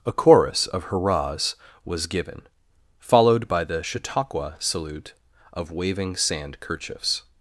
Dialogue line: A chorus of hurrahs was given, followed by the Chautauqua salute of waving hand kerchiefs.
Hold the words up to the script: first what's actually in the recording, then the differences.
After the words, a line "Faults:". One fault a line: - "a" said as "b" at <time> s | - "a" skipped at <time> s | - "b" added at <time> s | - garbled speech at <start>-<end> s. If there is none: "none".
A chorus of hurrahs was given, followed by the Chautauqua salute of waving sand kerchiefs.
Faults:
- "hand" said as "sand" at 6.2 s